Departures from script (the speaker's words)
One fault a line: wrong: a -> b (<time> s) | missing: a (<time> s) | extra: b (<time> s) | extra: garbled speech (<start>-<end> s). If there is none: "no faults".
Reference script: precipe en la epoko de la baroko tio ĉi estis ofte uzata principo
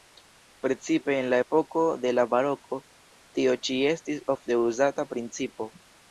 no faults